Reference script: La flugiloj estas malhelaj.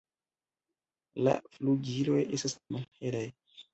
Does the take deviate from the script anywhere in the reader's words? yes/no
no